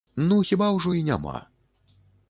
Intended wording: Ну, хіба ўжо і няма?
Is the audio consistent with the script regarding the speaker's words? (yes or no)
yes